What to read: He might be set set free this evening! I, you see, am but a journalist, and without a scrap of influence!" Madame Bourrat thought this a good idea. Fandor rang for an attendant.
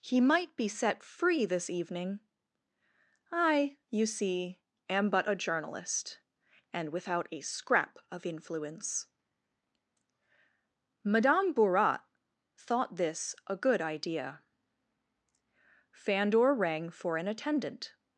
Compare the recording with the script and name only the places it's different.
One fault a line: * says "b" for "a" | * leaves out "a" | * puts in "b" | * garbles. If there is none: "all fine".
* leaves out "set"